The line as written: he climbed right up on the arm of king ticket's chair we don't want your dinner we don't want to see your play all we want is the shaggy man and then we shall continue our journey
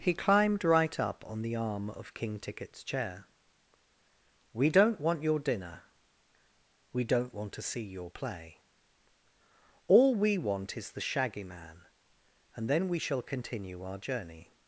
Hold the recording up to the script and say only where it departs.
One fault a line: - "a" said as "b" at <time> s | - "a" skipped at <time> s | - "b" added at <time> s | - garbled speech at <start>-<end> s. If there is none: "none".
none